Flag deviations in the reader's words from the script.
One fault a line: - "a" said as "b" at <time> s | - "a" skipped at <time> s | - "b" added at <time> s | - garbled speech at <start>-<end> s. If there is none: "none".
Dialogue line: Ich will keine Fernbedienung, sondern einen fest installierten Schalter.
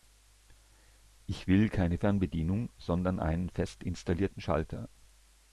none